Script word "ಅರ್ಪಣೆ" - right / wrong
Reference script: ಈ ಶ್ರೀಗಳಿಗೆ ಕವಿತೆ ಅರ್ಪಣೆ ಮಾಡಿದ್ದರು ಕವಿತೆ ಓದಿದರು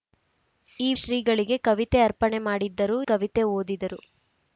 right